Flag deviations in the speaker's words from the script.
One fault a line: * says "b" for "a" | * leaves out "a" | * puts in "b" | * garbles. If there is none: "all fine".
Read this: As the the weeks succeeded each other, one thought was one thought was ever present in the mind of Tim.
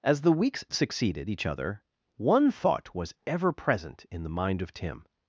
* leaves out "the"
* leaves out "one thought was"